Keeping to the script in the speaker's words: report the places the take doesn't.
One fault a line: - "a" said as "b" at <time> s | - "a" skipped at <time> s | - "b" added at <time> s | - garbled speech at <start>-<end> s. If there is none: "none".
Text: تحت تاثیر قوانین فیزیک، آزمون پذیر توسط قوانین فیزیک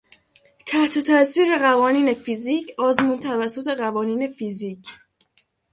- "پذیر" skipped at 3.2 s